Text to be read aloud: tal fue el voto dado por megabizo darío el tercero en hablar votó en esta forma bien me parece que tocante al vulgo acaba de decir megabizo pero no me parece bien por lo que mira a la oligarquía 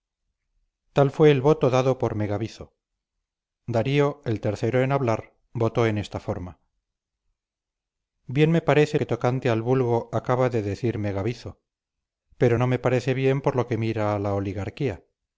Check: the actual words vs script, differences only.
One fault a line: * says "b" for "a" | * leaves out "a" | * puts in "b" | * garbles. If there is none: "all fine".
all fine